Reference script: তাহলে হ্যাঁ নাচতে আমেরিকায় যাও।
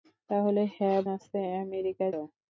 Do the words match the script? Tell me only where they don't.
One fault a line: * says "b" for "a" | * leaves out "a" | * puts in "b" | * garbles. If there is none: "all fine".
all fine